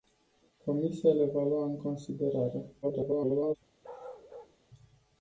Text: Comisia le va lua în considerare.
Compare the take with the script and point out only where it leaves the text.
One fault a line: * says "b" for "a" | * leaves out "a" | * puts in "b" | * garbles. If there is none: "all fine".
* garbles